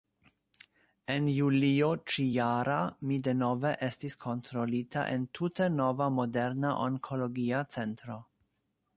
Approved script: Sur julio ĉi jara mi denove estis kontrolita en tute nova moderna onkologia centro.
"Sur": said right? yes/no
no